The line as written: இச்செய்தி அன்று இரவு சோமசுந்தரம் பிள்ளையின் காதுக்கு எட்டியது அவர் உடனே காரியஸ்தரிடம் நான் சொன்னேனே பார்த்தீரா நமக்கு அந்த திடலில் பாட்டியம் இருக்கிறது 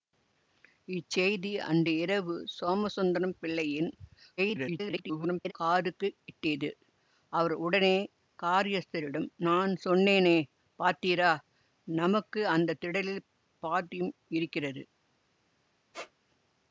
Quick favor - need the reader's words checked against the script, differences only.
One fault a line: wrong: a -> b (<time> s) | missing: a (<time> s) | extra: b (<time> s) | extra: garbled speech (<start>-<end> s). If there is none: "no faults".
extra: garbled speech (4.4-5.5 s)